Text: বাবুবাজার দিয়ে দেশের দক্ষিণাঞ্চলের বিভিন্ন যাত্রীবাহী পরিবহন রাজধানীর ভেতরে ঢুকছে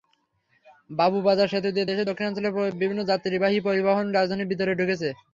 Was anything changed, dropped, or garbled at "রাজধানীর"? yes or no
no